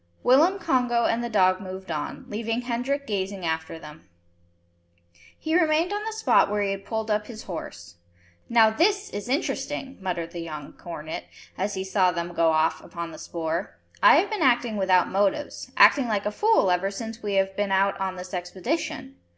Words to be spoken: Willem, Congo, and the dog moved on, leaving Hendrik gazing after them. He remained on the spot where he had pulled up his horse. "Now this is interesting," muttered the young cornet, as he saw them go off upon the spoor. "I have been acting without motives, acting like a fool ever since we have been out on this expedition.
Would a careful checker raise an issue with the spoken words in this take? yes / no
no